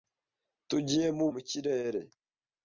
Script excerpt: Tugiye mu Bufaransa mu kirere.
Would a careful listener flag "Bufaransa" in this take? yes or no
yes